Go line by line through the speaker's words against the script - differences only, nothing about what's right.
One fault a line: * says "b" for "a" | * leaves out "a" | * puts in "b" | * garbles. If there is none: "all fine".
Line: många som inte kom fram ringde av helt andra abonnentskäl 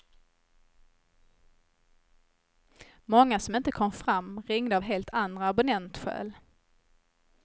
all fine